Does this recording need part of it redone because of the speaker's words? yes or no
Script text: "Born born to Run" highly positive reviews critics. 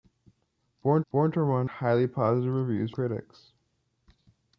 no